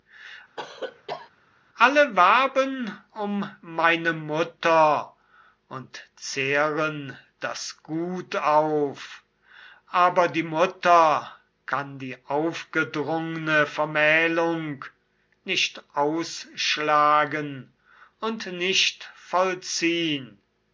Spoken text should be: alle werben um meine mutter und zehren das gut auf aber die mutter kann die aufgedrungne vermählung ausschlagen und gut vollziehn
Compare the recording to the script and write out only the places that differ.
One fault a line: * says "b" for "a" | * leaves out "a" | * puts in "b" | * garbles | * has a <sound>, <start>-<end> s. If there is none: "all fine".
* has a cough, 0.6-1.3 s
* puts in "nicht"
* says "nicht" for "gut"